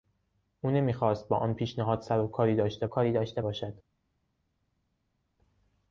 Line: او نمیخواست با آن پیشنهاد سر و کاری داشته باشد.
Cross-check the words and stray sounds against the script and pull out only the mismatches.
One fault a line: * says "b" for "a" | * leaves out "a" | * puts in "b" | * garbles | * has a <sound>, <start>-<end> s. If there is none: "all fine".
* puts in "کاری داشته"